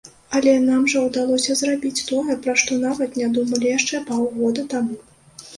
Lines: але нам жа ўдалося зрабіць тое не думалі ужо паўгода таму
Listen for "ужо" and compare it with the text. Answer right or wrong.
wrong